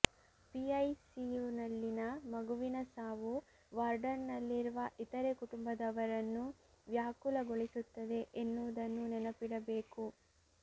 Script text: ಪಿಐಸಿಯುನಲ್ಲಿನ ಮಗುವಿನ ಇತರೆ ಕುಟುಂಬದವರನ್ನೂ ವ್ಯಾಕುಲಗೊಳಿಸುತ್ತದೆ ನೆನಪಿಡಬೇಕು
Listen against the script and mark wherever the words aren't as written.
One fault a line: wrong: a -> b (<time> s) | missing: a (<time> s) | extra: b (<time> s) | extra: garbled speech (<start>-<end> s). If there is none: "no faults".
extra: ಸಾವು ವಾರ್ಡ್ನಲ್ಲಿರುವ (2.9 s)
extra: ಎನ್ನುವುದನ್ನು (8.4 s)